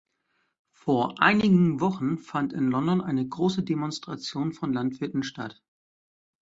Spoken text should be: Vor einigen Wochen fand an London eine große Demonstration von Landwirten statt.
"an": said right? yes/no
no